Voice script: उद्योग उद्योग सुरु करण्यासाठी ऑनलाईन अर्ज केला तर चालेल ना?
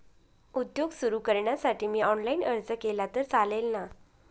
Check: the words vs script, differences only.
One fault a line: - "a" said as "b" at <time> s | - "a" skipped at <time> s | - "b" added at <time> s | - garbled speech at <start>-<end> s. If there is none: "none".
- "उद्योग" skipped at 0.9 s
- "मी" added at 1.9 s